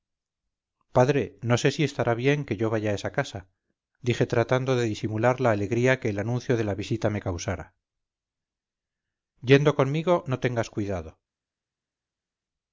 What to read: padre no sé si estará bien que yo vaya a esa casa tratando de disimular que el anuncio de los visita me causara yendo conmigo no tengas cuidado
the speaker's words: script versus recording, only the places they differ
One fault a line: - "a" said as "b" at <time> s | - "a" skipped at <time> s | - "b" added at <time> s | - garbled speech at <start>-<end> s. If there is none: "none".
- "dije" added at 4.0 s
- "la alegría" added at 5.4 s
- "los" said as "la" at 6.6 s